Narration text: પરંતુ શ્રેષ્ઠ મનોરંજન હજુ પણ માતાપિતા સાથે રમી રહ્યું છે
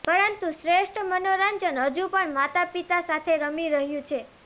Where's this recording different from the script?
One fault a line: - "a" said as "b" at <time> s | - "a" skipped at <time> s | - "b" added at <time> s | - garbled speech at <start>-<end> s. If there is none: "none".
none